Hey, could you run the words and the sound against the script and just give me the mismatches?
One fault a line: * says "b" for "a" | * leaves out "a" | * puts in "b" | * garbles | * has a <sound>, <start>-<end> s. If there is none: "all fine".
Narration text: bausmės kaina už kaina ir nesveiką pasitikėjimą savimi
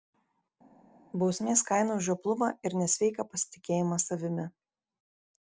* says "žioplumą" for "kaina"